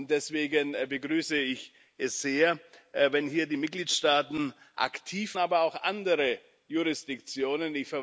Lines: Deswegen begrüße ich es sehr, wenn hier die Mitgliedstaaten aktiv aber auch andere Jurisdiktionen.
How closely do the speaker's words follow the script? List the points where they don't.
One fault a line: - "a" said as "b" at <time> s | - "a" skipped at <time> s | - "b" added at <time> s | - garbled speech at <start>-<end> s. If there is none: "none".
none